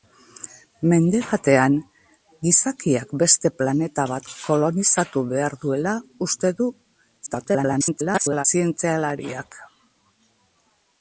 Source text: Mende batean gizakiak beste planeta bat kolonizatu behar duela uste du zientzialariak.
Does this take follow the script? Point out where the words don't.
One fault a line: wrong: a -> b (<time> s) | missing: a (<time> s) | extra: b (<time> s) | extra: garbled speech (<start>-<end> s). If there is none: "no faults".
extra: garbled speech (7.3-8.4 s)